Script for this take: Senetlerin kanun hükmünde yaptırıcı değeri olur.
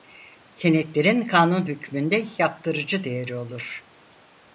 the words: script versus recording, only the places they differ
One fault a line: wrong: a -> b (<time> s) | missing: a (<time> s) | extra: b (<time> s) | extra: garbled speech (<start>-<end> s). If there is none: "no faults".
no faults